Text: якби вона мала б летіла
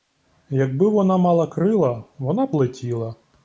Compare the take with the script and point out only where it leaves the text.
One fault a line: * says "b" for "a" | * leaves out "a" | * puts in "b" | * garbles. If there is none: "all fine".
* puts in "крила вона"